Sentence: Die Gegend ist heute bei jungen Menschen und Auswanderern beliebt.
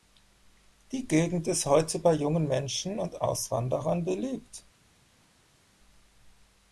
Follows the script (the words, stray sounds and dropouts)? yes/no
yes